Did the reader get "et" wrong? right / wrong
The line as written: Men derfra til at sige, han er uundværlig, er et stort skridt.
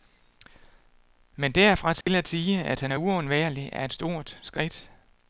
right